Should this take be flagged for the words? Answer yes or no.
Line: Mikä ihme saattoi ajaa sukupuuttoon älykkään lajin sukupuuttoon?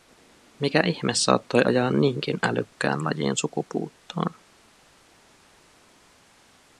yes